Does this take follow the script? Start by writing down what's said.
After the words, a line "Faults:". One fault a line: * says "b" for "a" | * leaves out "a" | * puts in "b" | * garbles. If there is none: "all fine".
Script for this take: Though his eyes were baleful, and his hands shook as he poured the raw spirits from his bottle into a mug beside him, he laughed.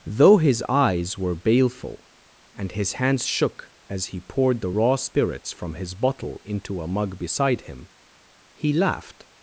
Though his eyes were baleful, and his hands shook as he poured the raw spirits from his bottle into a mug beside him, he laughed.
Faults:
all fine